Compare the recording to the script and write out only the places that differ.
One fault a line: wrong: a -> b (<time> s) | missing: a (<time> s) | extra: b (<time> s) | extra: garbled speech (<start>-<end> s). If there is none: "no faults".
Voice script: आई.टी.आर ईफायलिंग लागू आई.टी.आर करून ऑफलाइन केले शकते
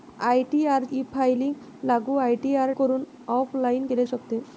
no faults